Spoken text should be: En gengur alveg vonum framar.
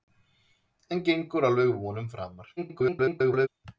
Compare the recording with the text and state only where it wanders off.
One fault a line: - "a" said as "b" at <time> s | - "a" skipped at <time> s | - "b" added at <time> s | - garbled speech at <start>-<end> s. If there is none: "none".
- garbled speech at 2.6-3.5 s